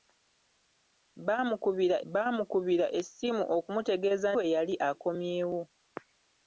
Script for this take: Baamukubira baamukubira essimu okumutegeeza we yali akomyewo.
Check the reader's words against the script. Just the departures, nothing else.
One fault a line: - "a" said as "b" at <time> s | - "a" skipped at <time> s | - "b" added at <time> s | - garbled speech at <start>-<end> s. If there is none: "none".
none